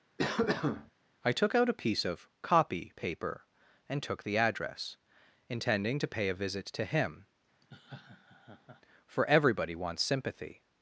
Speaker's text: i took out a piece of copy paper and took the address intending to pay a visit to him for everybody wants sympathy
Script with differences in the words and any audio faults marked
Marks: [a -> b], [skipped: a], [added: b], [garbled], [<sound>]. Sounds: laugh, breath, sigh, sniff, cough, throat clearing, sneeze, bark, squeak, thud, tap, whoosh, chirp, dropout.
[cough] i took out a piece of copy paper and took the address intending to pay a visit to him [laugh] for everybody wants sympathy